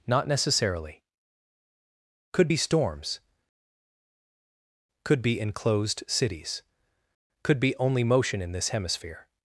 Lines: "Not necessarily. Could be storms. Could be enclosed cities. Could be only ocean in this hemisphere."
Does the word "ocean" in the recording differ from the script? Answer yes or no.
yes